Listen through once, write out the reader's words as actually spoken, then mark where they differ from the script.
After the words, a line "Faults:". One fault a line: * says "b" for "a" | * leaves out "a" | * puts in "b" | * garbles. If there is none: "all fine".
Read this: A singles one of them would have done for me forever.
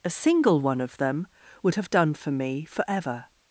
A single one of them would have done for me forever.
Faults:
* says "single" for "singles"